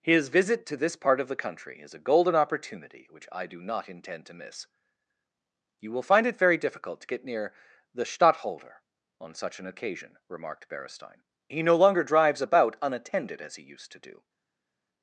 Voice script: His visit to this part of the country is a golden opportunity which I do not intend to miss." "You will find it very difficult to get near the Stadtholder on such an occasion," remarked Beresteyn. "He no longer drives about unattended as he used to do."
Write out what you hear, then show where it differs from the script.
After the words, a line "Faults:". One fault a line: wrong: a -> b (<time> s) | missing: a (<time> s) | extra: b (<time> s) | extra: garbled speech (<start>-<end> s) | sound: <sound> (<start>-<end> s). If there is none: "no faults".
His visit to this part of the country is a golden opportunity which I do not intend to miss." "You will find it very difficult to get near the Stadtholder on such an occasion," remarked Beresteyn. "He no longer drives about unattended as he used to do."
Faults:
no faults